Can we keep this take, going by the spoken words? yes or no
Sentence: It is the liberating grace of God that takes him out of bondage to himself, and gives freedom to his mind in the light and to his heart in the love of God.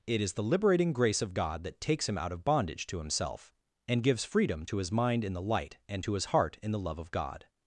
yes